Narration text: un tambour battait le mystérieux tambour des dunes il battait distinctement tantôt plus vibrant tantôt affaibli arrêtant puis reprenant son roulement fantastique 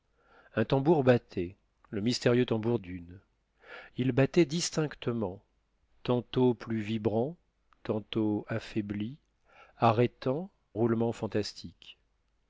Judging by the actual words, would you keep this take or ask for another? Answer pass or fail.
fail